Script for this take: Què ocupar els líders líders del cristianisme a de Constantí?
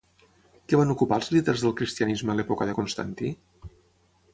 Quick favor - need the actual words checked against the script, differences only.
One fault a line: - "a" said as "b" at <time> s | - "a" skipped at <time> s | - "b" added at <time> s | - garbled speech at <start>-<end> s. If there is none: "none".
- "van" added at 0.8 s
- "líders" skipped at 1.7 s
- "l'època" added at 2.4 s